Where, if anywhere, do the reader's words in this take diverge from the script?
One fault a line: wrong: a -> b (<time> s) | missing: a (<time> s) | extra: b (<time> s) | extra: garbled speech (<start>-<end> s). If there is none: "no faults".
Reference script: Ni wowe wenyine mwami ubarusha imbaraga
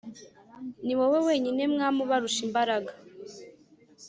no faults